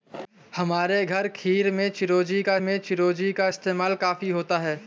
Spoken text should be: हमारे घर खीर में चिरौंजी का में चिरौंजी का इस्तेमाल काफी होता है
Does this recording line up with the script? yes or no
yes